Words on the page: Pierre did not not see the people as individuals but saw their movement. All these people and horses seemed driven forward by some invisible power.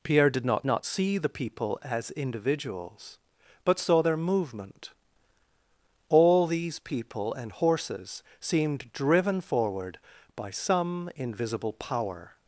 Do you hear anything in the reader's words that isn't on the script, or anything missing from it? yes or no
no